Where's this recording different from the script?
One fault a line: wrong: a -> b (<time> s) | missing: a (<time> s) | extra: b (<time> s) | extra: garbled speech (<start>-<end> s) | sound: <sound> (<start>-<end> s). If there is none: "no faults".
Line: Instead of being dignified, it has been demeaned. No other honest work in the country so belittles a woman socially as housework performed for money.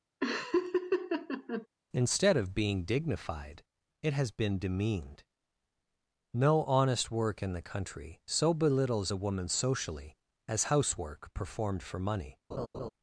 sound: laugh (0.2-1.7 s)
missing: other (6.6 s)
sound: laugh (12.5-12.9 s)